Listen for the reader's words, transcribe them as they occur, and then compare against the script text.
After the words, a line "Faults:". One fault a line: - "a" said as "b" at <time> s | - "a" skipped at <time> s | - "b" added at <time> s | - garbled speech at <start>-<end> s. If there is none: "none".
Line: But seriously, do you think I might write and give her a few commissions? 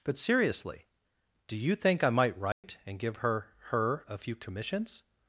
But seriously, do you think I might write and give her her a few commissions?
Faults:
- "her" added at 3.7 s